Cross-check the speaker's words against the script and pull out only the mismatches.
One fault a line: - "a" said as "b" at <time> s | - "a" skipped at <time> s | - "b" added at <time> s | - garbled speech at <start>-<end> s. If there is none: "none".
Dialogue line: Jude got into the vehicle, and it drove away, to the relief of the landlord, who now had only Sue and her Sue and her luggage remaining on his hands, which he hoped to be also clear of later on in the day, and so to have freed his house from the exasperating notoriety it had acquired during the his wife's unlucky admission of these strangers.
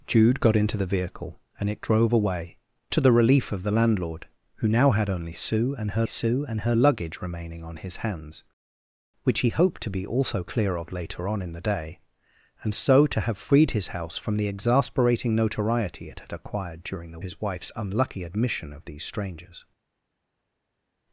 none